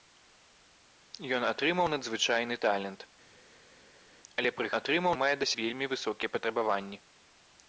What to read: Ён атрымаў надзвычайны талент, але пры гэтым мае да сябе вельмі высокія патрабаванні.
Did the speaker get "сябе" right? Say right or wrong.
wrong